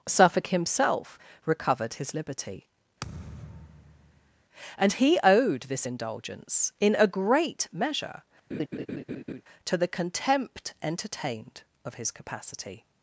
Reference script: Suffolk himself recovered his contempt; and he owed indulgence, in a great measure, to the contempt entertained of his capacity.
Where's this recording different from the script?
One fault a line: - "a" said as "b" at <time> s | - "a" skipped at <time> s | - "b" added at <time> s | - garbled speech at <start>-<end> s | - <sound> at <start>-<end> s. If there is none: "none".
- "contempt" said as "liberty" at 2.1 s
- thud at 3.0-4.4 s
- "this" added at 5.6 s
- laugh at 8.5-9.4 s